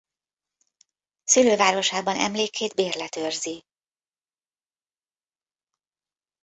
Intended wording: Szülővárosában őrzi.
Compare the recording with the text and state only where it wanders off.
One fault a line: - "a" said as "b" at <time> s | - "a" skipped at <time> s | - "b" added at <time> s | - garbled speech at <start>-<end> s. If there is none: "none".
- "emlékét bérlet" added at 2.2 s